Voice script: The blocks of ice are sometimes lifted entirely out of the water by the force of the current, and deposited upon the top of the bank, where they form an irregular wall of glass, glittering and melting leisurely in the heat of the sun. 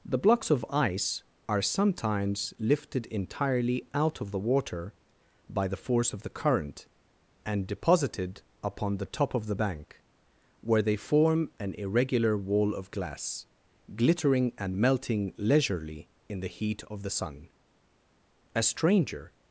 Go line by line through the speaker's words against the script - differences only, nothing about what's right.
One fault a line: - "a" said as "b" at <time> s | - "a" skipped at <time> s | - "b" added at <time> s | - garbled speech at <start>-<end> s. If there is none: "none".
- "A stranger" added at 18.5 s